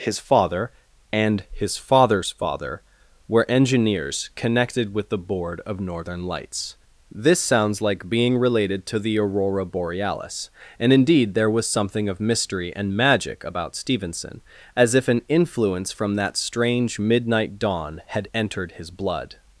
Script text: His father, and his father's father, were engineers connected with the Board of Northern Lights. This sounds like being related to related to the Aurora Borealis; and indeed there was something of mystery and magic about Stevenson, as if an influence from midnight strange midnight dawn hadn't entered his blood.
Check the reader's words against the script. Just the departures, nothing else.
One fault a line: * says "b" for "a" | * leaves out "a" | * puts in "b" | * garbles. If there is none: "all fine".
* leaves out "related to"
* says "that" for "midnight"
* says "had" for "hadn't"